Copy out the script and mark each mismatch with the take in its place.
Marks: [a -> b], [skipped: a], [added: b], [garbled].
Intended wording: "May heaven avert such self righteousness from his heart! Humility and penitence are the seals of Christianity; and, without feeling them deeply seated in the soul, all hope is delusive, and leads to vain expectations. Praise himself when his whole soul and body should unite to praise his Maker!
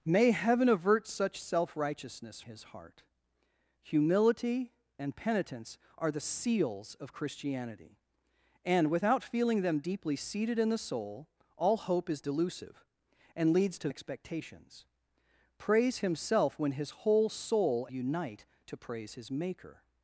"May heaven avert such self righteousness [skipped: from] his heart! Humility and penitence are the seals of Christianity; and, without feeling them deeply seated in the soul, all hope is delusive, and leads to [skipped: vain] expectations. Praise himself when his whole soul [skipped: and body should] unite to praise his Maker!